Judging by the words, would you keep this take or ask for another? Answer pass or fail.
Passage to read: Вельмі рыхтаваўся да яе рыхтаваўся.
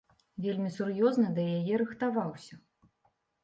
fail